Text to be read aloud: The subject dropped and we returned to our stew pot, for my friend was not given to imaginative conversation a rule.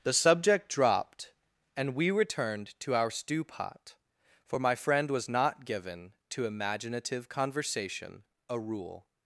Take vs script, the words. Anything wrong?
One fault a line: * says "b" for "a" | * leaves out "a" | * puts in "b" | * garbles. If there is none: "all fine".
all fine